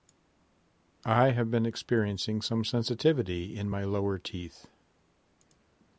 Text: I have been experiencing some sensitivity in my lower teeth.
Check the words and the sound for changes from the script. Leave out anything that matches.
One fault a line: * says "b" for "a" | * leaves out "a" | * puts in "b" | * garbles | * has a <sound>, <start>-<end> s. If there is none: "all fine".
all fine